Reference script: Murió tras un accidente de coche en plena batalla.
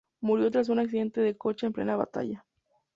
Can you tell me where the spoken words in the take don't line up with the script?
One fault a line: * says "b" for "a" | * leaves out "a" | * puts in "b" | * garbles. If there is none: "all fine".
all fine